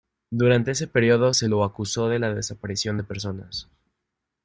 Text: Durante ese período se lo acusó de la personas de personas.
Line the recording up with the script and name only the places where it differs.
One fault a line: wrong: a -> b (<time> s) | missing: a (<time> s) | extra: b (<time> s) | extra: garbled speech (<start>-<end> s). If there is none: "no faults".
wrong: personas -> desaparición (2.3 s)